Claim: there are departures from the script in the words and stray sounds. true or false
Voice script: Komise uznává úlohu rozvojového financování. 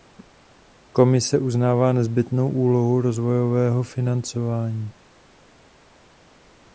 true